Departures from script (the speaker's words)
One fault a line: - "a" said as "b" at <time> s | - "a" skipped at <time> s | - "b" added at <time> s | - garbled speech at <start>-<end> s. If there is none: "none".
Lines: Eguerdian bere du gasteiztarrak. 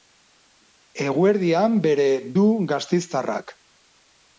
none